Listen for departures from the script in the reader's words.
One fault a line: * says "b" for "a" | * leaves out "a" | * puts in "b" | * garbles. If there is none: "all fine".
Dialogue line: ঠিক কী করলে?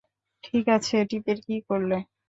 * puts in "আছে টিপের"